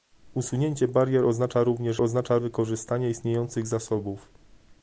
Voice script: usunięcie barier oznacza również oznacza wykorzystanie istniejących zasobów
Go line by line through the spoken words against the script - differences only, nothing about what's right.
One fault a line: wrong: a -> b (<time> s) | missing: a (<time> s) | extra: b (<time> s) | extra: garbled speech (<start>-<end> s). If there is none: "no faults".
no faults